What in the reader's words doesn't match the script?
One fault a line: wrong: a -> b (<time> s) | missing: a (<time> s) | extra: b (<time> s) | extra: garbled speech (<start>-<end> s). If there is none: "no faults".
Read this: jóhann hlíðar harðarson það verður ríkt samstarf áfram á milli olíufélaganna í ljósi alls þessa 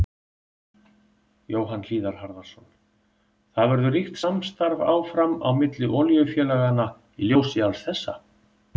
no faults